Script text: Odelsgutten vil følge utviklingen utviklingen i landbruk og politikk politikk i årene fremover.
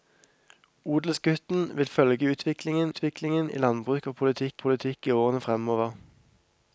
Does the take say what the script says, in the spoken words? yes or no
yes